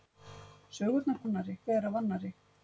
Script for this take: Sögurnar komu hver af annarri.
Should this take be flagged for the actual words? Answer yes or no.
yes